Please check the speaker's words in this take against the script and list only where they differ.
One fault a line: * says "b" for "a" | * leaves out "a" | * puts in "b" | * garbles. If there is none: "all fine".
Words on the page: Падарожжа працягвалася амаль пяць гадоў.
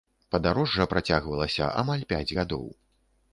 all fine